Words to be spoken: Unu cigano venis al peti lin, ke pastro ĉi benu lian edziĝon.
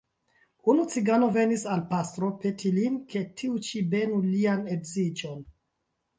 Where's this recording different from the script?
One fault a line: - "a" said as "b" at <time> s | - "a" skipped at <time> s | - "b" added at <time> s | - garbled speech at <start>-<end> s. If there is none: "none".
- "pastro" added at 1.9 s
- "pastro" said as "tiu" at 3.4 s